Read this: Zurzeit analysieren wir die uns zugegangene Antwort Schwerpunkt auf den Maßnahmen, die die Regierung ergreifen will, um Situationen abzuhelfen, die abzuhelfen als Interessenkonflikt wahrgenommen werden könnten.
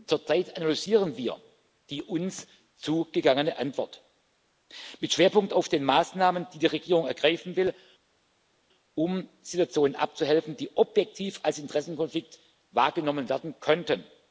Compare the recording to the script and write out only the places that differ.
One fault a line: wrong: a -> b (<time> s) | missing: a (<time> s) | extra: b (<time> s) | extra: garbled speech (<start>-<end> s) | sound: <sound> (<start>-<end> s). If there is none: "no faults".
extra: mit (5.0 s)
wrong: abzuhelfen -> objektiv (10.8 s)